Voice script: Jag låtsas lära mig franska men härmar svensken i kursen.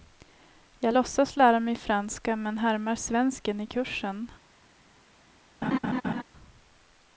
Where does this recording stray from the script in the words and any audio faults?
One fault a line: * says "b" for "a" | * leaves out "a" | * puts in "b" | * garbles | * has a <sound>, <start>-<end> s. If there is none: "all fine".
* has a laugh, 5.6-6.2 s